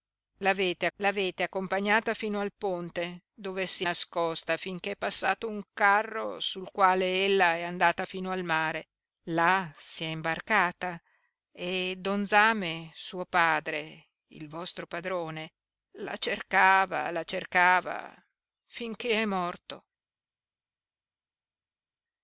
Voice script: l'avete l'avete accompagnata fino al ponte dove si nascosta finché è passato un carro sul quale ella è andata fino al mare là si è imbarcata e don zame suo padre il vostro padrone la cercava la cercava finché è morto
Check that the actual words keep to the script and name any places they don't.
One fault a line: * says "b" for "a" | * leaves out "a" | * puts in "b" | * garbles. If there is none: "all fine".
all fine